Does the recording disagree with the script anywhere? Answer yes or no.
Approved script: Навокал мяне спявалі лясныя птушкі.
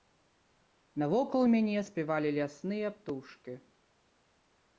no